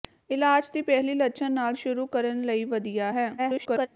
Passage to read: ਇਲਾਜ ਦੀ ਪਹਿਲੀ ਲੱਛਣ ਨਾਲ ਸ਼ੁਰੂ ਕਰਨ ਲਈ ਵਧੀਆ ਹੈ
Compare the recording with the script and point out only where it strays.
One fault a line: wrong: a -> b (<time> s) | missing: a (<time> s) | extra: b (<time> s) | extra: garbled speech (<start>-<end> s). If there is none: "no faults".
extra: garbled speech (3.4-3.9 s)